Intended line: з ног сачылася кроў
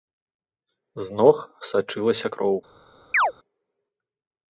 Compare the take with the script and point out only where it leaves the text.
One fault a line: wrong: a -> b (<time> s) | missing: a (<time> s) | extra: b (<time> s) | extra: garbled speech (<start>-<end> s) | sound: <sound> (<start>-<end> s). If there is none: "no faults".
sound: chirp (3.1-3.3 s)